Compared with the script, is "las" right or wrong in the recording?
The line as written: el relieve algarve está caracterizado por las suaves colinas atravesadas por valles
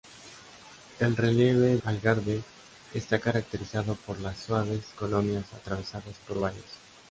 right